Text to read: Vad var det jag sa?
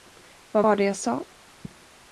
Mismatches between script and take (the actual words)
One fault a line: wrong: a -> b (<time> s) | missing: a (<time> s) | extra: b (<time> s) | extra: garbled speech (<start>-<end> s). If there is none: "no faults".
no faults